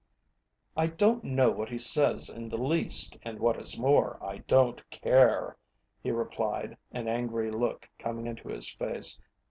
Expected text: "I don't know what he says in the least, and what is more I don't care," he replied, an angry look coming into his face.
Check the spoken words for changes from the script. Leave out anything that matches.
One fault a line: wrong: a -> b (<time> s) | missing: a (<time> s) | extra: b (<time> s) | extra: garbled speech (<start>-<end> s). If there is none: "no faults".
no faults